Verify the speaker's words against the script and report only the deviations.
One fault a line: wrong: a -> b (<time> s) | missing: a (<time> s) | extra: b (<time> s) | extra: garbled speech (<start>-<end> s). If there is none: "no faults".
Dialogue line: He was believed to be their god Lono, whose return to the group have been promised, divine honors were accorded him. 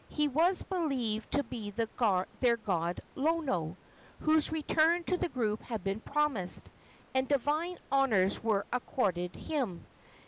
wrong: have -> had (5.6 s)
extra: and (7.1 s)